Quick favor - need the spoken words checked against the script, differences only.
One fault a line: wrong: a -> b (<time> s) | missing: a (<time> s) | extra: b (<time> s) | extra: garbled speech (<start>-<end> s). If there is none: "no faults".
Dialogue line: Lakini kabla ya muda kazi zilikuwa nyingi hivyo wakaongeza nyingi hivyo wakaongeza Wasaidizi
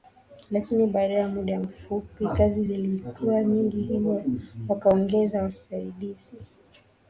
wrong: kabla -> baada (0.9 s)
extra: mfupi (1.6 s)
missing: nyingi hivyo wakaongeza (5.4 s)